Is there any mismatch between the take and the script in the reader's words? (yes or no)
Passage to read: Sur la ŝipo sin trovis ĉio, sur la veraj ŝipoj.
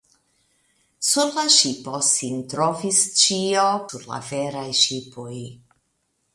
no